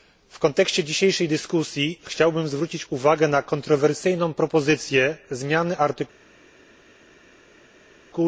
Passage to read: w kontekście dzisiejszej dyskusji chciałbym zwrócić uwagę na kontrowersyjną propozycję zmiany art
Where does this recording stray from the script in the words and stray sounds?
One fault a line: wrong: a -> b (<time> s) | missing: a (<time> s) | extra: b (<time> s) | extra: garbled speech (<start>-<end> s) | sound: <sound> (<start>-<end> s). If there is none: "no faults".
no faults